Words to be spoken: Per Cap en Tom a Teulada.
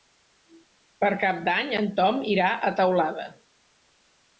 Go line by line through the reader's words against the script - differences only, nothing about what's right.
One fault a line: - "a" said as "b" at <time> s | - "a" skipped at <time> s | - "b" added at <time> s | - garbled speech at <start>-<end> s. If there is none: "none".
- "d'Any" added at 1.5 s
- "irà" added at 2.4 s